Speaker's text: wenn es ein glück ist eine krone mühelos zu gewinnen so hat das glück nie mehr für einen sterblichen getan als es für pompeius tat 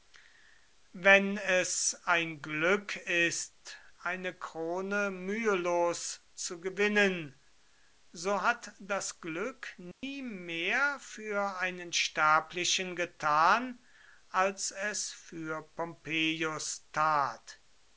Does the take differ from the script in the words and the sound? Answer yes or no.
yes